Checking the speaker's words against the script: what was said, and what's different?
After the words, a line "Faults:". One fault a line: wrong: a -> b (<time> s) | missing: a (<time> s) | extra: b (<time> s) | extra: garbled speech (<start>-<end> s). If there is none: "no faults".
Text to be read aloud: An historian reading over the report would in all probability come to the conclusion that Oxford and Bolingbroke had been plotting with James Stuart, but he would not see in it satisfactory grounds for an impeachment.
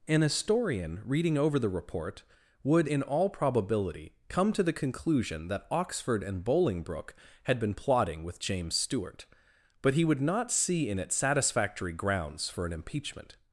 An historian reading over the report would in all probability come to the conclusion that Oxford and Bolingbroke had been plotting with James Stuart, but he would not see in it satisfactory grounds for an impeachment.
Faults:
no faults